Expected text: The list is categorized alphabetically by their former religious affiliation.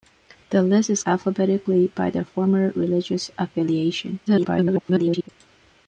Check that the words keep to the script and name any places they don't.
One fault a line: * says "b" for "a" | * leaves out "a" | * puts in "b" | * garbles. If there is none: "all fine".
* leaves out "categorized"
* garbles